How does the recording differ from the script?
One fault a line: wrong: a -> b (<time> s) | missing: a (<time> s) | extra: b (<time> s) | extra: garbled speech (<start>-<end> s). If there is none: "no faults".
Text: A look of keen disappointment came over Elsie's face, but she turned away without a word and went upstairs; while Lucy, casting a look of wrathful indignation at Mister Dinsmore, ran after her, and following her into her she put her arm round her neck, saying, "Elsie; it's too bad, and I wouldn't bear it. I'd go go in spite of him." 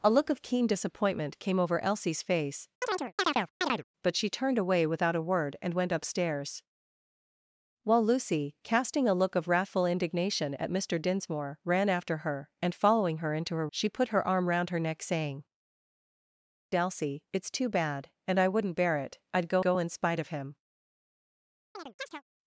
no faults